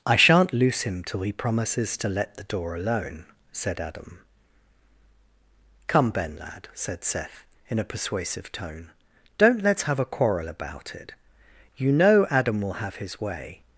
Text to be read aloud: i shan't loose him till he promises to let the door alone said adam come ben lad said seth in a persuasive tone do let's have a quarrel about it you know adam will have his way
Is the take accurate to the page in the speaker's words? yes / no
no